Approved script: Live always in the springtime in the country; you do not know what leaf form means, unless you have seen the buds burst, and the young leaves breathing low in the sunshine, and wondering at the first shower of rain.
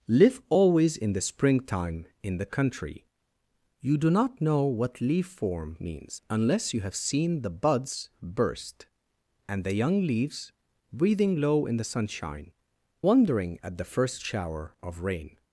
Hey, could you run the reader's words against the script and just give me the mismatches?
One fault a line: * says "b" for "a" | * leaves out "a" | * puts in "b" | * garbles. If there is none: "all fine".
* leaves out "and"